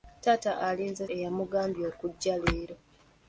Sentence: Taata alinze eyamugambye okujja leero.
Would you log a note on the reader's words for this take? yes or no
no